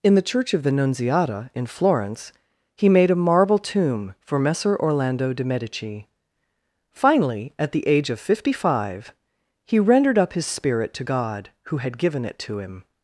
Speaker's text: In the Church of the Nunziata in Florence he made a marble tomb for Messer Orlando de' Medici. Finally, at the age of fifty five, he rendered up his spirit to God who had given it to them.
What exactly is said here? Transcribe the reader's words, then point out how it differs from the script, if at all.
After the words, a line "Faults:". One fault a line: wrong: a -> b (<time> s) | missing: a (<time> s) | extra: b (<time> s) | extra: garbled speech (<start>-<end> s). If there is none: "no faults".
In the Church of the Nunziata in Florence he made a marble tomb for Messer Orlando de' Medici. Finally, at the age of fifty five, he rendered up his spirit to God who had given it to him.
Faults:
wrong: them -> him (12.6 s)